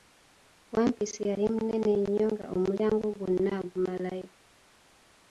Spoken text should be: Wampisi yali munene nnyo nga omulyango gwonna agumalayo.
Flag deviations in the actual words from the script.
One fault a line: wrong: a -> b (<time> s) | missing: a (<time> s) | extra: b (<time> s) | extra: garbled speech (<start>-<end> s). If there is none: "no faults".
no faults